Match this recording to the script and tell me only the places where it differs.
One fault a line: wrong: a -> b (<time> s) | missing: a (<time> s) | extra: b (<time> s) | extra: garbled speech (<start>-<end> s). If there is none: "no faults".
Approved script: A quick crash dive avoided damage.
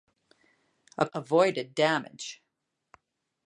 missing: quick crash dive (1.1 s)